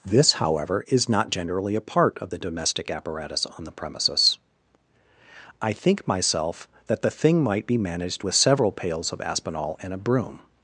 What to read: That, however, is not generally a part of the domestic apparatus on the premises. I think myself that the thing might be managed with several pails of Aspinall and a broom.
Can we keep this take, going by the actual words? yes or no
no